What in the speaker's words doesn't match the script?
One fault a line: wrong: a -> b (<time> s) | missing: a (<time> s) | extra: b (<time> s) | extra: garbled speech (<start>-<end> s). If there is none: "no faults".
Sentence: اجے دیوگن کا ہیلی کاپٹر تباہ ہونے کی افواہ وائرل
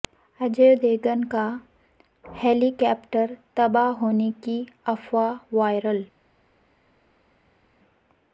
no faults